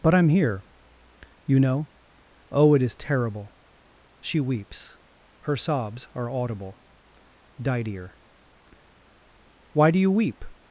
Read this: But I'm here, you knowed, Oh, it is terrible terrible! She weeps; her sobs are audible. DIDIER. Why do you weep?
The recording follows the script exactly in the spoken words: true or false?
false